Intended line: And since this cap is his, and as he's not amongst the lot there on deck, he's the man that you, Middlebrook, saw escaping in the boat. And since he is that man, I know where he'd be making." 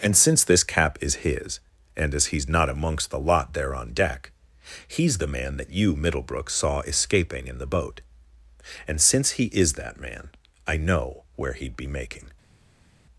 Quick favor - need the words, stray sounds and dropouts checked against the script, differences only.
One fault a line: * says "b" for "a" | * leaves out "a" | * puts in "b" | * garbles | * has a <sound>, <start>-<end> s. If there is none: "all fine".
all fine